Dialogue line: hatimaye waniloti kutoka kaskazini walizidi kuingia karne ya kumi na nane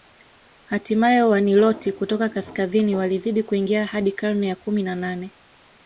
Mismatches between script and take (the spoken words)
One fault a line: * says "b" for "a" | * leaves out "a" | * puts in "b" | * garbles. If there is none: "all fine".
* puts in "hadi"